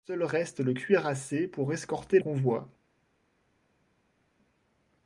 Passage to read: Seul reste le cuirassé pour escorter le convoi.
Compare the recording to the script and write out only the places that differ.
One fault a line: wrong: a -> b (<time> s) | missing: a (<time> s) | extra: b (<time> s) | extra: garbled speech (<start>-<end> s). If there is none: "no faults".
missing: le (2.2 s)